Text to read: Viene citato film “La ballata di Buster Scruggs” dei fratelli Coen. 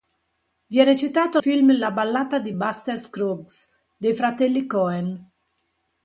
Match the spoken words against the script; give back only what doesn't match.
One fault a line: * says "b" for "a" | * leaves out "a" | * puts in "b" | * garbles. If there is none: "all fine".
all fine